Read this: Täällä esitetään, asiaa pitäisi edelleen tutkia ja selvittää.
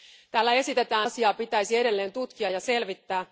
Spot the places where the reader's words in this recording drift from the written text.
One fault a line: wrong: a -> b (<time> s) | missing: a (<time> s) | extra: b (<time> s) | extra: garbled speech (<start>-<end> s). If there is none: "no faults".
no faults